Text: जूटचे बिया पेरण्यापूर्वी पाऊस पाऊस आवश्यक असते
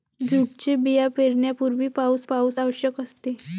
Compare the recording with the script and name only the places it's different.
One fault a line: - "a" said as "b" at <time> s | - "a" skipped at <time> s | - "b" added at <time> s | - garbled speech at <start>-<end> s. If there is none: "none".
none